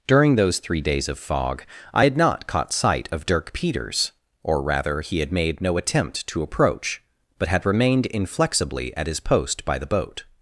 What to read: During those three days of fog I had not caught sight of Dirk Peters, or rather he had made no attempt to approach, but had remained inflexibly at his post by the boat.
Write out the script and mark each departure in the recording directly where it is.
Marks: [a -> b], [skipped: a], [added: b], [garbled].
During those three days of fog I had not caught sight of Dirk Peters, or rather he had made no attempt to approach, but had remained inflexibly at his post by the boat.